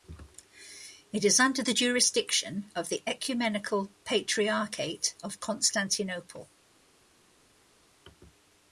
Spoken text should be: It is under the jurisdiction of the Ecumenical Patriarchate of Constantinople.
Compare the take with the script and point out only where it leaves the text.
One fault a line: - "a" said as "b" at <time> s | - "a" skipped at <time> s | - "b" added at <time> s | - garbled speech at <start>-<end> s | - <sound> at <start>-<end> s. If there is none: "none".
none